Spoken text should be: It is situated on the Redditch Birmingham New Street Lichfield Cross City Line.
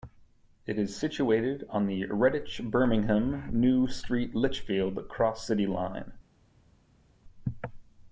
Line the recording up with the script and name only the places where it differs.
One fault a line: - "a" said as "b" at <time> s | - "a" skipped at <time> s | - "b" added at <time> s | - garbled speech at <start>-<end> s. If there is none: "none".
none